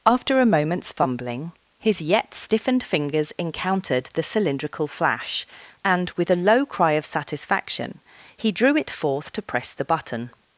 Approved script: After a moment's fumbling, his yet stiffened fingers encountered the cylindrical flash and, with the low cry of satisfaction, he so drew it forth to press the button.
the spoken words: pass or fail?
fail